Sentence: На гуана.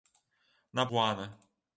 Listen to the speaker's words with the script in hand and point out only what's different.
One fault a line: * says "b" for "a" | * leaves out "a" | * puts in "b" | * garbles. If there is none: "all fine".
all fine